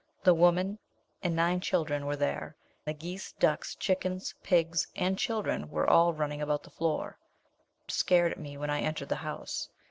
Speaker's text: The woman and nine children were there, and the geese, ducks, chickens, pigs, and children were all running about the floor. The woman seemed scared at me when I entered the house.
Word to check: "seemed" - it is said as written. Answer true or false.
false